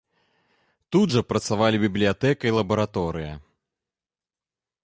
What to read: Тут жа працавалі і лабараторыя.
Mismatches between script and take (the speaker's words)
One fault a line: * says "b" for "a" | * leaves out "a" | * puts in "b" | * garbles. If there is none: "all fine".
* puts in "бібліятэка"